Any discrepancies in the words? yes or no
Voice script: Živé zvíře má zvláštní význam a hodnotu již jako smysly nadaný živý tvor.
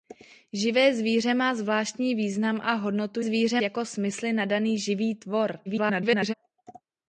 yes